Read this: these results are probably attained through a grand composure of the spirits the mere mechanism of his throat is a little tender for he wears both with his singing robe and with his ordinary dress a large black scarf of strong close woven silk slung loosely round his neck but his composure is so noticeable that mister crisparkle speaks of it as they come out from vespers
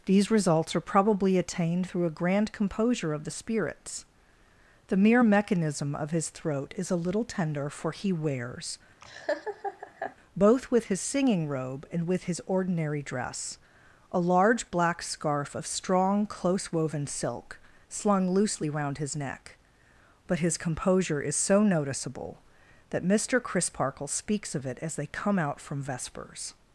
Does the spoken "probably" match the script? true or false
true